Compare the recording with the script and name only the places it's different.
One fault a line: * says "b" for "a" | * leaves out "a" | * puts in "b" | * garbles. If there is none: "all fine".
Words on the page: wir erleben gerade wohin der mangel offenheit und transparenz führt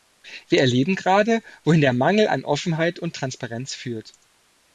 * puts in "an"